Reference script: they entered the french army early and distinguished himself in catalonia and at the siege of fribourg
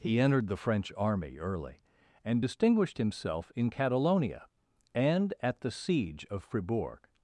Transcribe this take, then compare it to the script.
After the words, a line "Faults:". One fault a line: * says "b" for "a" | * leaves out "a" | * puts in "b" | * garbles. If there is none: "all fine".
he entered the french army early and distinguished himself in catalonia and at the siege of fribourg
Faults:
* says "he" for "they"